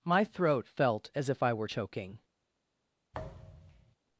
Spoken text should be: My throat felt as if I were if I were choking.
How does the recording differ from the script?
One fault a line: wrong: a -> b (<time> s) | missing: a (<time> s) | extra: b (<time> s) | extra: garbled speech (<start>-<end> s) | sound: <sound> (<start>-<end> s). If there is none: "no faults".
missing: if I were (1.7 s)
sound: thud (3.1-4.0 s)